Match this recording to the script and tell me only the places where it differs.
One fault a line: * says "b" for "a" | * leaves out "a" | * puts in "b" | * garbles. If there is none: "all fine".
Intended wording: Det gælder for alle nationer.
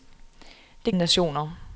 * leaves out "gælder for alle"